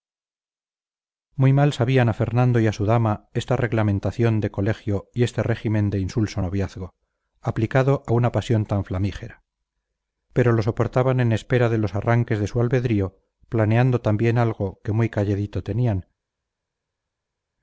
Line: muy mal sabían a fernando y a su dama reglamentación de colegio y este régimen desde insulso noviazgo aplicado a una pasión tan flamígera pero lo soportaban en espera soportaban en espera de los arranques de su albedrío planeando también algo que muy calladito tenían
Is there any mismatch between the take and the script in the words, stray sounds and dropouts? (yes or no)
yes